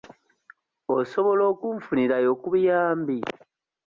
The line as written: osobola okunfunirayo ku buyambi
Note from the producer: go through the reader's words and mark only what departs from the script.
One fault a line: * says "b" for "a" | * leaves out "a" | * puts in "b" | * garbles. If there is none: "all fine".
all fine